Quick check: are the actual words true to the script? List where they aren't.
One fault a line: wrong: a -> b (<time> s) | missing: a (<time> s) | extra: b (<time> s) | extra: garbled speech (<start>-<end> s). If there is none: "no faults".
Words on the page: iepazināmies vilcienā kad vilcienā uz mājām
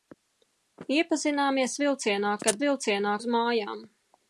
no faults